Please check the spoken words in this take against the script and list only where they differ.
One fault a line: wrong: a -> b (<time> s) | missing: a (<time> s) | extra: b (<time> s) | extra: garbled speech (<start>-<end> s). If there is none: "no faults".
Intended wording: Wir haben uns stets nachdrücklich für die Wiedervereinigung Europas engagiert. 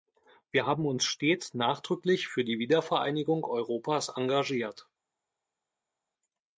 no faults